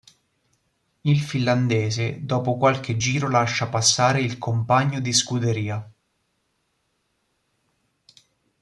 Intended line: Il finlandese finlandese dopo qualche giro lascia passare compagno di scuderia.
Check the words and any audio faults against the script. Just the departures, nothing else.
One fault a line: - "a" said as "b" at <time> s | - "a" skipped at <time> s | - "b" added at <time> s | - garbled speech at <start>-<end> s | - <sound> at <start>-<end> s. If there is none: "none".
- "finlandese" skipped at 2.2 s
- "il" added at 4.2 s